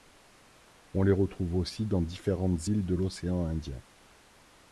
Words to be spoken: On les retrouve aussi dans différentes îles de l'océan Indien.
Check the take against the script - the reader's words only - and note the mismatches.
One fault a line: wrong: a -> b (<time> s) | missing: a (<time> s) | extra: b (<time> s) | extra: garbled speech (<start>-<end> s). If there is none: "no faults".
no faults